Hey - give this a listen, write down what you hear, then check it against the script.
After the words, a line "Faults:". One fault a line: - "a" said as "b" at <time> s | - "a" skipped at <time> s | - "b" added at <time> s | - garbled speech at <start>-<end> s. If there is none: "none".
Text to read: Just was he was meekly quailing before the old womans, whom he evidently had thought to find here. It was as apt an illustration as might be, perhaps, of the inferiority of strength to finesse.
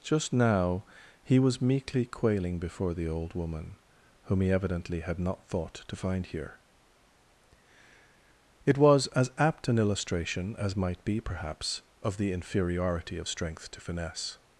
Just now he was meekly quailing before the old woman, whom he evidently had not thought to find here. It was as apt an illustration as might be, perhaps, of the inferiority of strength to finesse.
Faults:
- "was" said as "now" at 0.3 s
- "womans" said as "woman" at 3.4 s
- "not" added at 5.2 s